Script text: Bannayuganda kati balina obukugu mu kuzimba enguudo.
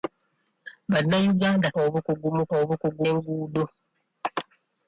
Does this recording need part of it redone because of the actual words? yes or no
yes